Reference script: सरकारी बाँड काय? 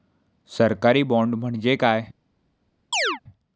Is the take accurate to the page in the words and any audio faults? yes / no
no